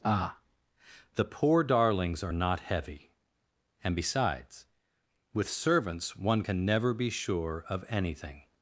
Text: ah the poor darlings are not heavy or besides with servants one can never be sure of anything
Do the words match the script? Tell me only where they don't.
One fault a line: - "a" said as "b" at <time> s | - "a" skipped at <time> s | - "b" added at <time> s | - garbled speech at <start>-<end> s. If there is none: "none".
- "or" said as "and" at 3.8 s